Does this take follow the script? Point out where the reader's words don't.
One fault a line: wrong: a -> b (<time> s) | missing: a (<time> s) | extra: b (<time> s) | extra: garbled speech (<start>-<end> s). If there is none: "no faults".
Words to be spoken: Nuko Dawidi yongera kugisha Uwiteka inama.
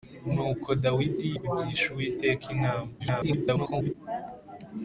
missing: yongera (1.3 s)
extra: garbled speech (3.0-3.9 s)